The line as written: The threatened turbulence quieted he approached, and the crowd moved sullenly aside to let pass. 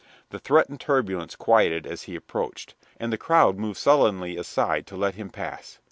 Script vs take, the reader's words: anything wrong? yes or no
yes